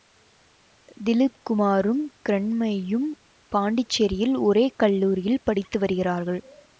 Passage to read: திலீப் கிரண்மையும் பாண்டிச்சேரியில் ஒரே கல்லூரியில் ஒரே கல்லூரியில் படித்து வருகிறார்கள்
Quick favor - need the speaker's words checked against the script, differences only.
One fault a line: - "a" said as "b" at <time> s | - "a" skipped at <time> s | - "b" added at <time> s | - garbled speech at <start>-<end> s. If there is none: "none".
- "குமாரும்" added at 1.4 s
- "ஒரே கல்லூரியில்" skipped at 5.4 s